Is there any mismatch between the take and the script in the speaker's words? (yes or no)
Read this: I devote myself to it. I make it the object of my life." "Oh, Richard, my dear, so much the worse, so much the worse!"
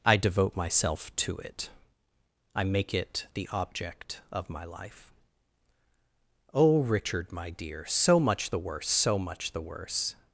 no